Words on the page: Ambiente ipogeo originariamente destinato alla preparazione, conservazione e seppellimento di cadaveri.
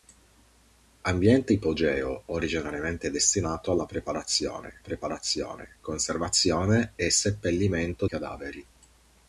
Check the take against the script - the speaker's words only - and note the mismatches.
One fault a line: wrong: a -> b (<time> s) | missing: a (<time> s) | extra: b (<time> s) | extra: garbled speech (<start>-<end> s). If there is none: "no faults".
extra: preparazione (4.8 s)
missing: di (8.0 s)